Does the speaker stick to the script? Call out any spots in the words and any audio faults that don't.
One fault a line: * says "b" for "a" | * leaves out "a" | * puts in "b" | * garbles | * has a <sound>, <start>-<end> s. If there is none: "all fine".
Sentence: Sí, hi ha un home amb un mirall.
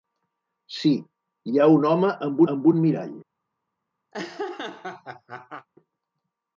* puts in "amb"
* has a laugh, 4.1-5.7 s